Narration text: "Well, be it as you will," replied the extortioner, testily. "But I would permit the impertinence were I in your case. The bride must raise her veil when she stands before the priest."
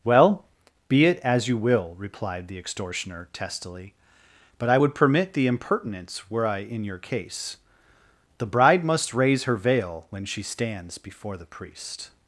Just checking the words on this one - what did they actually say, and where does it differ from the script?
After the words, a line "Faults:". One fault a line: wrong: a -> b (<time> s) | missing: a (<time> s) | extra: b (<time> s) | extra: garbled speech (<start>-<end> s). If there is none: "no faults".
"Well, be it as you will," replied the extortioner, testily. "But I would permit the impertinence were I in your case. The bride must raise her veil when she stands before the priest."
Faults:
no faults